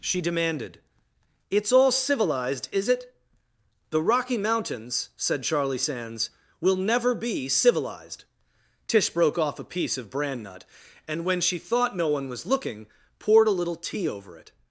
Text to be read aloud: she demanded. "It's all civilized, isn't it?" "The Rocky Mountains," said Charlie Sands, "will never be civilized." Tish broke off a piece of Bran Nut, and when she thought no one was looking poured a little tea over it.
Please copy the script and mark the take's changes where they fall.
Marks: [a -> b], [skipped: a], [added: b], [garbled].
she demanded. "It's all civilized, [isn't -> is] it?" "The Rocky Mountains," said Charlie Sands, "will never be civilized." Tish broke off a piece of Bran Nut, and when she thought no one was looking poured a little tea over it.